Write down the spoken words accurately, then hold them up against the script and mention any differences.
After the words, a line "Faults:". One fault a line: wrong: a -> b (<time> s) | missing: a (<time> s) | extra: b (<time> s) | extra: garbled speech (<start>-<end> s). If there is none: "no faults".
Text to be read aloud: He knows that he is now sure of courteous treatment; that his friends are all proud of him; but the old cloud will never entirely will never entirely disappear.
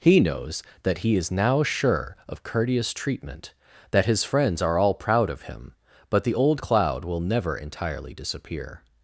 He knows that he is now sure of courteous treatment; that his friends are all proud of him; but the old cloud will never entirely disappear.
Faults:
missing: will never entirely (8.1 s)